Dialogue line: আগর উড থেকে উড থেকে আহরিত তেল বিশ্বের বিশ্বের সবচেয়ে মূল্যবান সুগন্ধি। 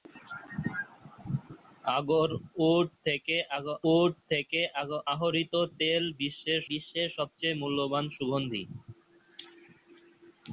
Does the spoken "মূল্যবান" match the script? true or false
true